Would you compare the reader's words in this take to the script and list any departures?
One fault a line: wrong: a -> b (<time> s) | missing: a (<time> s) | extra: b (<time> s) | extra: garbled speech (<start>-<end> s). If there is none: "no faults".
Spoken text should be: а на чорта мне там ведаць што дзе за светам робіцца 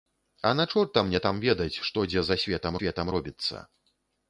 extra: светам (2.8 s)